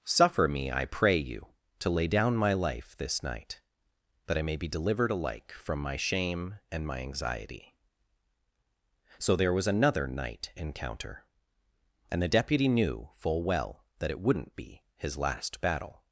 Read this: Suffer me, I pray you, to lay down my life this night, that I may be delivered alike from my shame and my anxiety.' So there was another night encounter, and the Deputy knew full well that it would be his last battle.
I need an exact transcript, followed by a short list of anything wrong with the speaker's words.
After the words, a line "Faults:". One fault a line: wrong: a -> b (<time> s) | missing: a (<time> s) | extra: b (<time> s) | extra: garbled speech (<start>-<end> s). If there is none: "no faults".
Suffer me, I pray you, to lay down my life this night, that I may be delivered alike from my shame and my anxiety.' So there was another night encounter, and the Deputy knew full well that it wouldn't be his last battle.
Faults:
wrong: would -> wouldn't (14.2 s)